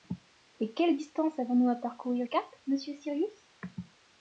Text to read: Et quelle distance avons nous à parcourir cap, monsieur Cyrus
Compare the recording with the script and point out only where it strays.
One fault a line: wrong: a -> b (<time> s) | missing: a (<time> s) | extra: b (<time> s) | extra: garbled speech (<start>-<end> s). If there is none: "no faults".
no faults